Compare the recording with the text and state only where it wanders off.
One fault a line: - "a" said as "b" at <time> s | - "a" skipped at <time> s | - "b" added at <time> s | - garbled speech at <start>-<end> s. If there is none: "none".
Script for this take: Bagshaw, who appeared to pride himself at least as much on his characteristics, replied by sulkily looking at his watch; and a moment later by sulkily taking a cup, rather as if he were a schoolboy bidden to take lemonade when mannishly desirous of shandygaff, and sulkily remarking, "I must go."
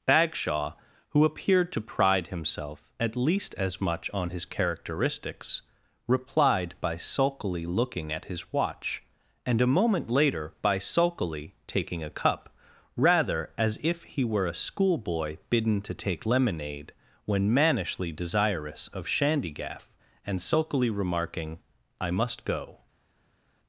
none